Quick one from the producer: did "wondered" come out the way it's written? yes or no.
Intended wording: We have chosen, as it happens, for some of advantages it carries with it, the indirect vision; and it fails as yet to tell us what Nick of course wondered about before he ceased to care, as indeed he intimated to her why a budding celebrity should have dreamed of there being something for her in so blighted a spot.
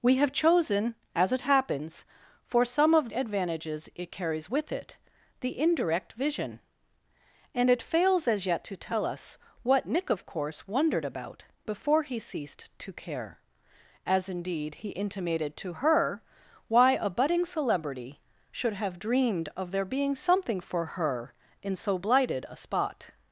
yes